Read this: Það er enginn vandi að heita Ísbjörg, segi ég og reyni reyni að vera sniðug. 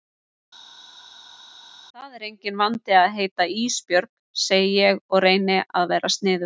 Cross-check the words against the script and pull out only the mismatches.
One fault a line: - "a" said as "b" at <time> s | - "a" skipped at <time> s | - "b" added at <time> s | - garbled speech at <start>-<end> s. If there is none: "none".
- "reyni" skipped at 5.6 s